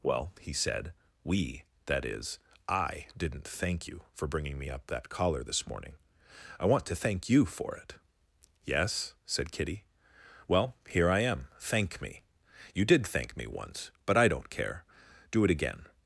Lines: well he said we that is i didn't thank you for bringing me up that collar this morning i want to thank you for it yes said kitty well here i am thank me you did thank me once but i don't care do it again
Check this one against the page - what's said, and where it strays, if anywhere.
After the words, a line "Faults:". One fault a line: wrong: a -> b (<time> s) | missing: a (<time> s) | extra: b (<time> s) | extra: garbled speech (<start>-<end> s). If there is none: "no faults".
well he said we that is i didn't thank you for bringing me up that collar this morning i want to thank you for it yes said kitty well here i am thank me you did thank me once but i don't care do it again
Faults:
no faults